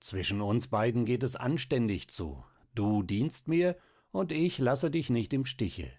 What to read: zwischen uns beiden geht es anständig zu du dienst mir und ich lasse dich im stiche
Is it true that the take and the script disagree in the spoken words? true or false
true